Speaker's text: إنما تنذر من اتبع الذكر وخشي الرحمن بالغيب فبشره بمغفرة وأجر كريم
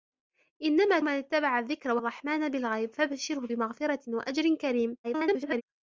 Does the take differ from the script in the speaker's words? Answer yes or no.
yes